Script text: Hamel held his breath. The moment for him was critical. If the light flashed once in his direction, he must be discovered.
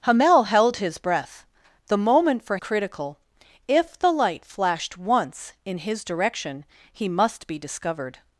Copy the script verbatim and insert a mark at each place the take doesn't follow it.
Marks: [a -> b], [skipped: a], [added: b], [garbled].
Hamel held his breath. The moment for [skipped: him was] critical. If the light flashed once in his direction, he must be discovered.